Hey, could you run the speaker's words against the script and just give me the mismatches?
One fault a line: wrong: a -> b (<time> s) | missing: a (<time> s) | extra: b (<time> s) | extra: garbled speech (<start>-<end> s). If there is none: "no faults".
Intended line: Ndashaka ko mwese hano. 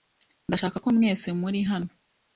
extra: muri (1.4 s)